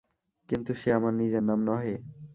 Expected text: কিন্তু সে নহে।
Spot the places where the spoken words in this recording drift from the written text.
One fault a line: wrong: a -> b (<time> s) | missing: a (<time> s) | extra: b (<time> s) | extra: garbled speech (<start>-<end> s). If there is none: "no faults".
extra: আমার নিজের নাম (0.9 s)